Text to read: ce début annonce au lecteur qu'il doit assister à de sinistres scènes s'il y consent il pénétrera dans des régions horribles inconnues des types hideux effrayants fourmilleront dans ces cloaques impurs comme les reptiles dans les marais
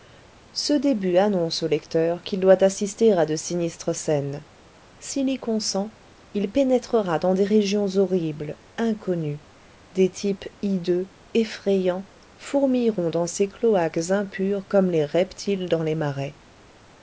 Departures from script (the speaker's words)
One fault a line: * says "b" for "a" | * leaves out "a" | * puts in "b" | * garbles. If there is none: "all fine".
all fine